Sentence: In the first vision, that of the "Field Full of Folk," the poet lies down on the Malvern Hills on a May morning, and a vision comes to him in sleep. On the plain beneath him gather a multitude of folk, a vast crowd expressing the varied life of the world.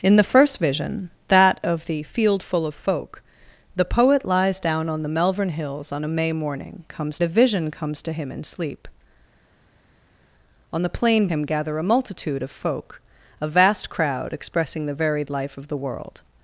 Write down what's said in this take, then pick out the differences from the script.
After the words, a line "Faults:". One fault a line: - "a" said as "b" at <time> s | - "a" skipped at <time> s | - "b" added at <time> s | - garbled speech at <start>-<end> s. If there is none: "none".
In the first vision, that of the "Field Full of Folk," the poet lies down on the Malvern Hills on a May morning, comes a vision comes to him in sleep. On the plain him gather a multitude of folk, a vast crowd expressing the varied life of the world.
Faults:
- "and" said as "comes" at 6.9 s
- "beneath" skipped at 11.3 s